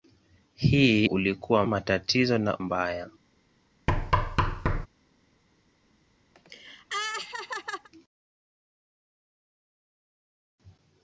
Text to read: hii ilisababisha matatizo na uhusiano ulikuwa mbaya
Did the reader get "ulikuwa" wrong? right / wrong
wrong